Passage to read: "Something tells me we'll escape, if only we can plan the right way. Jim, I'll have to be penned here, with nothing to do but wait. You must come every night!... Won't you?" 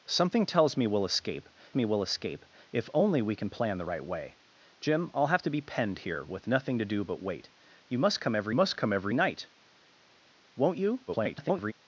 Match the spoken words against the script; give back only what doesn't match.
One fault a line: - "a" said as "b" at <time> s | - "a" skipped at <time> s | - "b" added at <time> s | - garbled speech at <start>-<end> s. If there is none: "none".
- "me we'll escape" added at 1.7 s
- "must come every" added at 8.5 s
- garbled speech at 11.1-11.7 s